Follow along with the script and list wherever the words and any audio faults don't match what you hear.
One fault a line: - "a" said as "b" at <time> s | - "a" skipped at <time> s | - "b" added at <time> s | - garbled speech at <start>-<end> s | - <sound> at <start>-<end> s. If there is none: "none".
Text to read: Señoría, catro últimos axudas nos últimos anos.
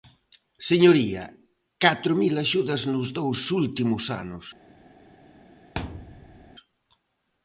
- "últimos" said as "mil" at 2.2 s
- "dous" added at 3.2 s
- thud at 5.8-6.5 s